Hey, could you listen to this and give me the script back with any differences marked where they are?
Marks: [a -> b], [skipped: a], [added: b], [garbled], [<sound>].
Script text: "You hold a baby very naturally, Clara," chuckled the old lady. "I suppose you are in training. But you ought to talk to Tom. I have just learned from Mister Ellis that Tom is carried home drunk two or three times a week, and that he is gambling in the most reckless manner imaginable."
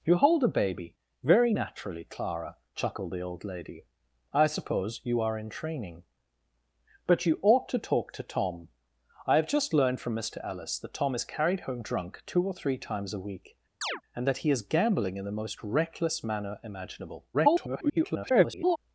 "You hold a baby very naturally, Clara," chuckled the old lady. "I suppose you are in training. But you ought to talk to Tom. I have just learned from Mister Ellis that Tom is carried home drunk two or three times a week, [chirp] and that he is gambling in the most reckless manner imaginable." [garbled]